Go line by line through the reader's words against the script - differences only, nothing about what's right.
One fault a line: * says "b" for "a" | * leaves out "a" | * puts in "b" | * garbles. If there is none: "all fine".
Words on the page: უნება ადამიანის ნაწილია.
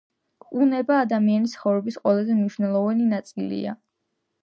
* puts in "ცხოვრების ყველაზე მნიშვნელოვანი"